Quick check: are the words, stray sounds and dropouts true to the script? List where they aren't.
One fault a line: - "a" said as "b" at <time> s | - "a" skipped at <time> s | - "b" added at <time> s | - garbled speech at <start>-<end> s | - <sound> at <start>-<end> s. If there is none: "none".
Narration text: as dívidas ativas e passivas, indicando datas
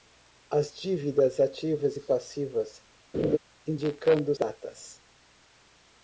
- laugh at 3.1-3.4 s